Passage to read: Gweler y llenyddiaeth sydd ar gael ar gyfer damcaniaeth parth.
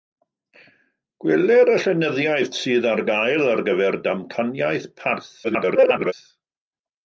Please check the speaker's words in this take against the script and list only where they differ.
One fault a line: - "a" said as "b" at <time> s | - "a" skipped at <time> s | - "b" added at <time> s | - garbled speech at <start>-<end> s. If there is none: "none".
- garbled speech at 5.4-6.1 s